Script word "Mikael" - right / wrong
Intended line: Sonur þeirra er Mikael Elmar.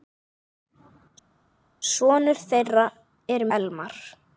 wrong